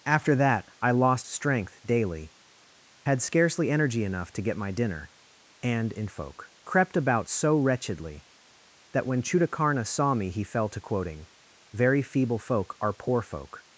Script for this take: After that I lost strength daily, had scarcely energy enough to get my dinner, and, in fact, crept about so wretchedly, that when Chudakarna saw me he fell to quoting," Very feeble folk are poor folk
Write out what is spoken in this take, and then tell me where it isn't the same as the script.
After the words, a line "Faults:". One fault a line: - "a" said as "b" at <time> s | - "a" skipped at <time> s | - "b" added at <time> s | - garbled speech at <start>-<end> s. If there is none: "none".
After that I lost strength daily, had scarcely energy enough to get my dinner, and, in folk, crept about so wretchedly, that when Chudakarna saw me he fell to quoting," Very feeble folk are poor folk
Faults:
- "fact" said as "folk" at 6.1 s